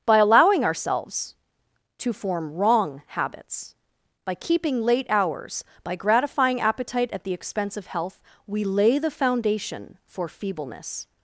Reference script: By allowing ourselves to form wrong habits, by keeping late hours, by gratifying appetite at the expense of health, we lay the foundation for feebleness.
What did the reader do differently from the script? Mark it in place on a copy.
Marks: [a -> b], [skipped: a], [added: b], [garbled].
By allowing ourselves to form wrong habits, by keeping late hours, by gratifying appetite at the expense of health, we lay the foundation for feebleness.